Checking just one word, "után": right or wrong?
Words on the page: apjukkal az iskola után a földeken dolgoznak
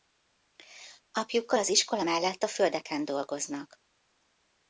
wrong